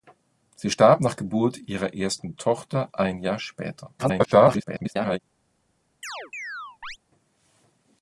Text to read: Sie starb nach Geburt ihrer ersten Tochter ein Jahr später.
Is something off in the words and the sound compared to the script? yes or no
yes